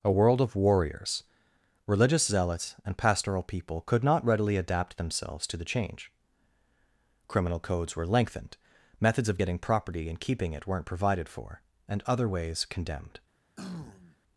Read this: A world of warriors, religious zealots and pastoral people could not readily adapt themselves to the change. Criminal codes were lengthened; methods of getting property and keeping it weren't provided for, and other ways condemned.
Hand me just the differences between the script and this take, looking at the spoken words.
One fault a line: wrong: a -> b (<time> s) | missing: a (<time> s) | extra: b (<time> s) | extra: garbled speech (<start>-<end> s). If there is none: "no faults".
no faults